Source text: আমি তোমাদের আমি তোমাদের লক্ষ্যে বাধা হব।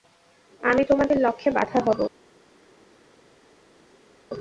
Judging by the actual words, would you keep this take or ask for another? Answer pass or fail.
fail